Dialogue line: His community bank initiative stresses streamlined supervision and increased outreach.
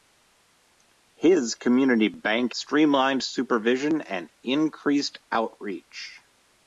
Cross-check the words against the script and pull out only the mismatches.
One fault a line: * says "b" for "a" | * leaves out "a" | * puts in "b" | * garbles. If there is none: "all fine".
* leaves out "initiative stresses"